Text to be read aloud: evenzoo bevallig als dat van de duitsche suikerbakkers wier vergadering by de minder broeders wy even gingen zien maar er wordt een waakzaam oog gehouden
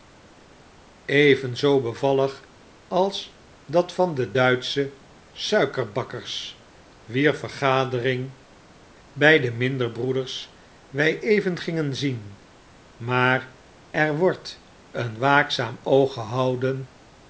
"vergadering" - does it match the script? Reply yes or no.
yes